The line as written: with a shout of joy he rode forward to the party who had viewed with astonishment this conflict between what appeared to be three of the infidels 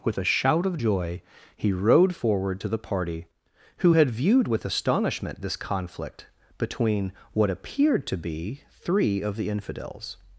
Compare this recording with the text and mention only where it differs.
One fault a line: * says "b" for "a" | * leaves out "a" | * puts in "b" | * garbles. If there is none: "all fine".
all fine